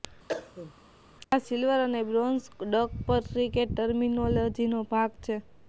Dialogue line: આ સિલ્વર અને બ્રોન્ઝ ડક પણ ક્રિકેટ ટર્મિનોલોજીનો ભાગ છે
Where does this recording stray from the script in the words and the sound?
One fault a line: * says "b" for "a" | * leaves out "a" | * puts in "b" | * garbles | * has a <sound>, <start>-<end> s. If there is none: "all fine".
* has a cough, 0.3-0.7 s